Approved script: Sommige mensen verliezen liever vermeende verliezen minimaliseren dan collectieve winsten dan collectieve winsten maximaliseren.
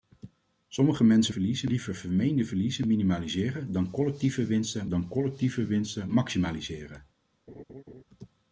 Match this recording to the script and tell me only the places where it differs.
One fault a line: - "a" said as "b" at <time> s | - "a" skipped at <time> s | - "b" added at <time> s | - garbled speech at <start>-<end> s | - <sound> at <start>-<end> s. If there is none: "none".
- laugh at 7.5-8.0 s